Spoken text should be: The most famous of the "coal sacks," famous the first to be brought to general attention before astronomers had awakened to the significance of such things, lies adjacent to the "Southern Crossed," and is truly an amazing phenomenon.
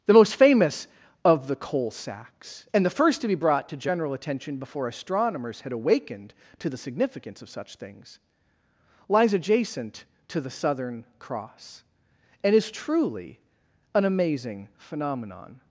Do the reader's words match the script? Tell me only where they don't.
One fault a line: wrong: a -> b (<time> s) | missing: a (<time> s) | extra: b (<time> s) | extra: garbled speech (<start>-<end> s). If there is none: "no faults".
wrong: famous -> and (2.7 s)
wrong: Crossed -> Cross (11.2 s)